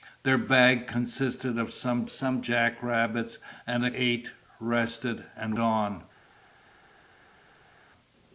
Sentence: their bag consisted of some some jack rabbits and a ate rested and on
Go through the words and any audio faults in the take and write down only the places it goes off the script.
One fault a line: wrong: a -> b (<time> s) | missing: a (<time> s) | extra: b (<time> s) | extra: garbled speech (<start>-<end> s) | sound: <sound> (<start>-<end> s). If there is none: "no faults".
no faults